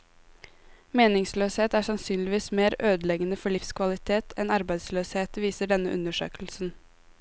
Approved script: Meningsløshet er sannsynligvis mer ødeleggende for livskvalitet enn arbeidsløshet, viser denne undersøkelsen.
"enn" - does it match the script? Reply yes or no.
yes